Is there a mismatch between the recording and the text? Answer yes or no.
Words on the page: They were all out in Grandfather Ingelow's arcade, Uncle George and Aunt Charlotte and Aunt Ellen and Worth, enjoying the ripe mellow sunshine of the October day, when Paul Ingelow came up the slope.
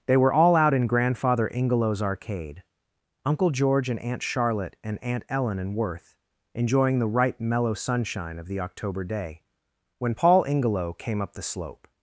no